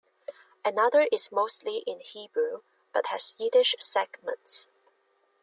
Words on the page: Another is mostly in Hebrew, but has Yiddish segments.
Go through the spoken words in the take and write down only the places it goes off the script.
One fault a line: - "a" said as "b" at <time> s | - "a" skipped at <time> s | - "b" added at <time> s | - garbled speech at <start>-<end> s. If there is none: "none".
none